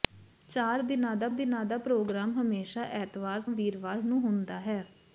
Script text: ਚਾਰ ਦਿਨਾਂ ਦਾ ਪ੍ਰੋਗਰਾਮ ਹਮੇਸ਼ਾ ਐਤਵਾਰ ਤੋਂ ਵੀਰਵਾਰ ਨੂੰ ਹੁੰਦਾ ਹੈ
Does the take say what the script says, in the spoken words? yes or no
no